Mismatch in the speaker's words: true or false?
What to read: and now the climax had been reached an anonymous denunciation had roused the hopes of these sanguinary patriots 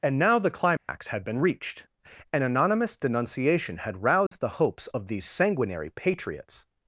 false